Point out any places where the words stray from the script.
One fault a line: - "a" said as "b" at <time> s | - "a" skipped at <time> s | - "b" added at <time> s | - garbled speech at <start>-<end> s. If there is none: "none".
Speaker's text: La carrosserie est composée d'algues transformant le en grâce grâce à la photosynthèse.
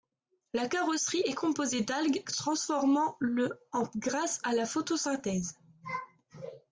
- "grâce" skipped at 4.4 s